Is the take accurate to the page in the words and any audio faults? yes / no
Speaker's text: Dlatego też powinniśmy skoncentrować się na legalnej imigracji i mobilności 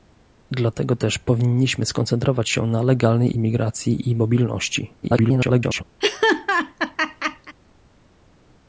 no